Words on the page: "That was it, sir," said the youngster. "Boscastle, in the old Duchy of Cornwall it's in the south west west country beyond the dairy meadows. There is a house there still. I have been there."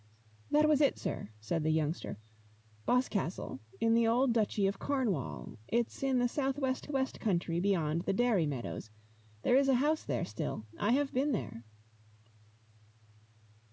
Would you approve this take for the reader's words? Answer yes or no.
yes